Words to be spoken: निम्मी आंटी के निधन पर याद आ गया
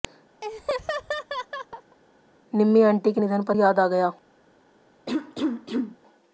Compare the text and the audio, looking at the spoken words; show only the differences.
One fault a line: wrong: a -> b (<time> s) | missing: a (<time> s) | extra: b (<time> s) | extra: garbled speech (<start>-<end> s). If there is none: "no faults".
no faults